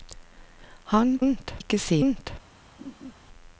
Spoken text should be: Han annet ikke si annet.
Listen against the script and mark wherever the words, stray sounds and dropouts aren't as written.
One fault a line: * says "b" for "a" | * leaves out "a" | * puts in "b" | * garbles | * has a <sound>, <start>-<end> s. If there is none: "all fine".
* has a laugh, 2.8-3.1 s